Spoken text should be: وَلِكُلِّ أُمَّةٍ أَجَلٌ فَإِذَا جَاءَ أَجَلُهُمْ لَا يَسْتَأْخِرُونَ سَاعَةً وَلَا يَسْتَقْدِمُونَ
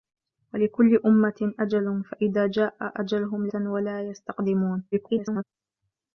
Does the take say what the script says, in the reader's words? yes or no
no